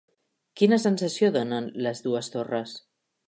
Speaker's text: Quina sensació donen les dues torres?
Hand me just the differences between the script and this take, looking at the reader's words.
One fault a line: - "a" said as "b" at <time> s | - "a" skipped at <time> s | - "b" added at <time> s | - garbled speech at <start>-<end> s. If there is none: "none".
none